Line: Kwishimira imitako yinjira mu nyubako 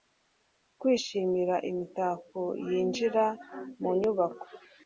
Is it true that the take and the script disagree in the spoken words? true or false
false